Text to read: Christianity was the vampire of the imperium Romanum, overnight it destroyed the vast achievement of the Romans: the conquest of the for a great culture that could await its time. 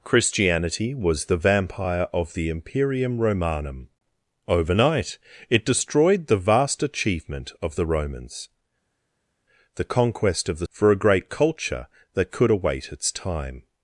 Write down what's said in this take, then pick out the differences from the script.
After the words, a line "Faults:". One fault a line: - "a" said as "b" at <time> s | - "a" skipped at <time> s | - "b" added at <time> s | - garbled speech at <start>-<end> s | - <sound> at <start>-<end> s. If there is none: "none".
Christianity was the vampire of the imperium Romanum, overnight it destroyed the vast achievement of the Romans: the conquest of the for a great culture that could await its time.
Faults:
none